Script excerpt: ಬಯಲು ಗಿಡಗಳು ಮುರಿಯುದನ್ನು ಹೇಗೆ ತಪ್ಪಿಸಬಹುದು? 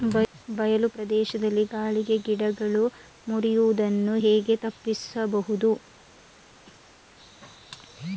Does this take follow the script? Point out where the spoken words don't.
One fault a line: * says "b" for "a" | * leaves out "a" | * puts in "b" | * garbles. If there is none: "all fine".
* puts in "ಪ್ರದೇಶದಲ್ಲಿ ಗಾಳಿಗೆ"